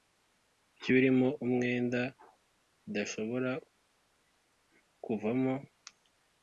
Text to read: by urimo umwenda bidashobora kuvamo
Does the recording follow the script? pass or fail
pass